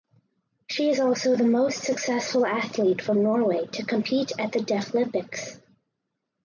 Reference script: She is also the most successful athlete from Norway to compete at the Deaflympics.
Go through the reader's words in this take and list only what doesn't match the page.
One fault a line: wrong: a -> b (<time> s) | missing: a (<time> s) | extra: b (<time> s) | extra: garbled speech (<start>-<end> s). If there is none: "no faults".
no faults